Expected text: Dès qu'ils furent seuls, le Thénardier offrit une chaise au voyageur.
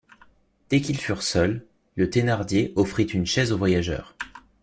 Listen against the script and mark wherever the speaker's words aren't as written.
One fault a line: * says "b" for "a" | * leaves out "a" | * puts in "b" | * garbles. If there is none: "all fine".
all fine